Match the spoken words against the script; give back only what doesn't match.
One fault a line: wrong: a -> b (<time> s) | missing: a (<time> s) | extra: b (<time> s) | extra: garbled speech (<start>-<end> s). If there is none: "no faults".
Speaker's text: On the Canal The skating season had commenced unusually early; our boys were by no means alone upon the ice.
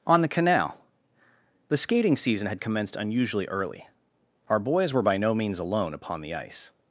no faults